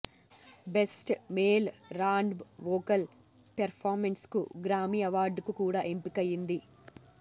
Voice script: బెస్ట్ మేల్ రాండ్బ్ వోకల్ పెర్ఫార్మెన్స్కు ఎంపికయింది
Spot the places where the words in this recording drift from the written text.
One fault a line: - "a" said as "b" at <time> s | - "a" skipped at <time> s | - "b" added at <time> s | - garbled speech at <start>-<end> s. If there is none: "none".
- "గ్రామీ అవార్డుకు కూడా" added at 4.7 s